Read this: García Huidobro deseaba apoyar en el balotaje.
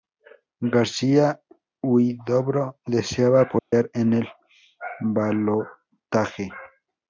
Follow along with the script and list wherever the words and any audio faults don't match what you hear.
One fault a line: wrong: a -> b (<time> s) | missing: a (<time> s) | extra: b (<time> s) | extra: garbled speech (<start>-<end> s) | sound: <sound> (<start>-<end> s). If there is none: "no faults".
sound: dropout (3.6-3.7 s)